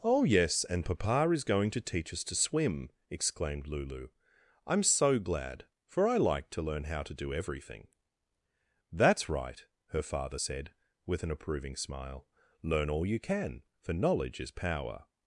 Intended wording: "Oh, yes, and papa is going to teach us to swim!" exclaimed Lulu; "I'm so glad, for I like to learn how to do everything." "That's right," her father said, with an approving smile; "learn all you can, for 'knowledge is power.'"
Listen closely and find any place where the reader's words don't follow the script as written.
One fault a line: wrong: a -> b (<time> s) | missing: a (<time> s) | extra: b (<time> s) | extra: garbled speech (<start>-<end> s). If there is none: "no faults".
no faults